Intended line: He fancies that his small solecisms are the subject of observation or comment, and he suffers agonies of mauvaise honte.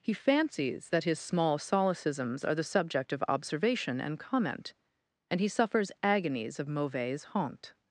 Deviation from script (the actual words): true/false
true